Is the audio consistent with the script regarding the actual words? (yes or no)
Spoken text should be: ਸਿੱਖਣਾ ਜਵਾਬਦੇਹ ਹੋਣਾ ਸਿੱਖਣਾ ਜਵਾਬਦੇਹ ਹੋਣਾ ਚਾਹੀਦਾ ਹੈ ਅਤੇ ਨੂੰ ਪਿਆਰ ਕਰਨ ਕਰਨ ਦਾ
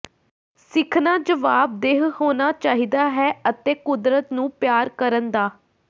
no